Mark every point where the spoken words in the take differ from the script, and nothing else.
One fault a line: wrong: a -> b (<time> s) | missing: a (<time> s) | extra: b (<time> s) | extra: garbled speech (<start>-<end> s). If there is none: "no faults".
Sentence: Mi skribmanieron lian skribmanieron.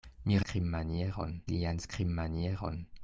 no faults